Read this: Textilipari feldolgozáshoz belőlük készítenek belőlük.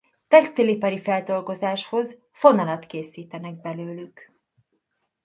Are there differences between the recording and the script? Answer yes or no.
yes